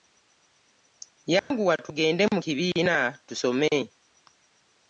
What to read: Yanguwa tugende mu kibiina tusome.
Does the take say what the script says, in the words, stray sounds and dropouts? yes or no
no